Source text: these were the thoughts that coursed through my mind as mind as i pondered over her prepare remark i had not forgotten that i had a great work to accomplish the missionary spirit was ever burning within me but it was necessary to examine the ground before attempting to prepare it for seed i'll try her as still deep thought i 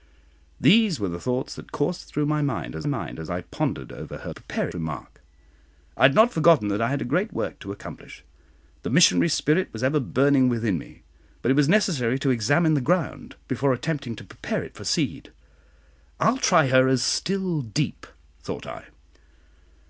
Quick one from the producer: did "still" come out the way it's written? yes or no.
yes